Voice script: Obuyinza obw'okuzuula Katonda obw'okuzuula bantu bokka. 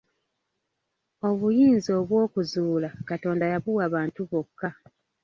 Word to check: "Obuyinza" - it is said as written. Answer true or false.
true